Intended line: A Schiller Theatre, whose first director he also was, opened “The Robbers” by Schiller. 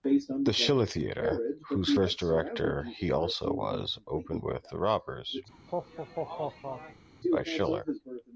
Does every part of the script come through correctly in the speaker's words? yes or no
no